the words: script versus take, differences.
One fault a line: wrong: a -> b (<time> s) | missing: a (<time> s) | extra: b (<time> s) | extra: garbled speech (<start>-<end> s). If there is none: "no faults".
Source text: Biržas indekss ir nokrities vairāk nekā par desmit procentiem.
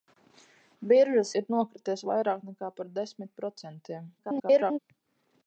missing: indekss (1.3 s)
extra: garbled speech (4.2-4.8 s)